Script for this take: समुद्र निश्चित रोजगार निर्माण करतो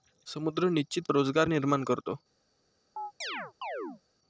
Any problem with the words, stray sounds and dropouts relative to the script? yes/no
yes